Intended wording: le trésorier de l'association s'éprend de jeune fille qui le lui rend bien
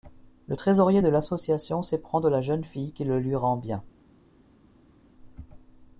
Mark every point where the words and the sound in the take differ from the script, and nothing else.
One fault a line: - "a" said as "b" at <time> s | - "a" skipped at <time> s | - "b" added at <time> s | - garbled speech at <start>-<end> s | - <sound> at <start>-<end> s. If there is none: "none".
- "la" added at 2.3 s